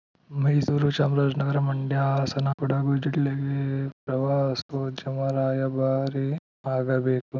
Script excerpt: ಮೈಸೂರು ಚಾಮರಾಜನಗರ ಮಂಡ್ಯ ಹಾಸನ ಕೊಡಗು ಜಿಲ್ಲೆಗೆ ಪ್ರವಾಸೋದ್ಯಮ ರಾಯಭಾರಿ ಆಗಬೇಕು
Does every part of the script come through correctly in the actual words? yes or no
yes